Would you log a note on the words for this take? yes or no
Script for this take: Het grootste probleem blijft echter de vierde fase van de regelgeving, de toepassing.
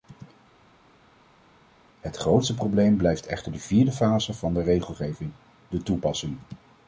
no